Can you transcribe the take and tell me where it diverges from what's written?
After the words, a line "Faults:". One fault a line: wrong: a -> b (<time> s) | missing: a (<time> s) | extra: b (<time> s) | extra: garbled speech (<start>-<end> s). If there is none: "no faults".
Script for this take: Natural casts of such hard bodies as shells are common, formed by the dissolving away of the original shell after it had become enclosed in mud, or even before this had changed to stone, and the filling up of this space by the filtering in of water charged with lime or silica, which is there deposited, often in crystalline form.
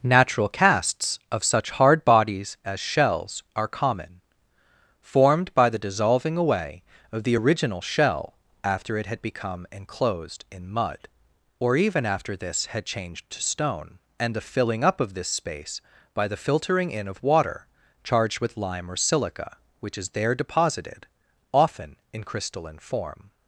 Natural casts of such hard bodies as shells are common, formed by the dissolving away of the original shell after it had become enclosed in mud, or even after this had changed to stone, and the filling up of this space by the filtering in of water charged with lime or silica, which is there deposited, often in crystalline form.
Faults:
wrong: before -> after (12.0 s)